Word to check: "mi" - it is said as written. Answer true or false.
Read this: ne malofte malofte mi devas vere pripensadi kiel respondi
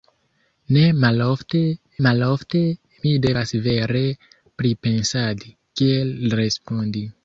true